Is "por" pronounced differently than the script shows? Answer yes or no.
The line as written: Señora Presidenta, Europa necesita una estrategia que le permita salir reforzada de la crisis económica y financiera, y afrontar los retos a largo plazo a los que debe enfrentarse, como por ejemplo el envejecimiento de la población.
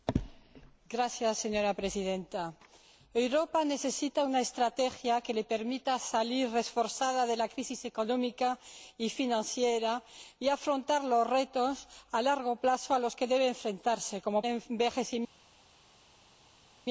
yes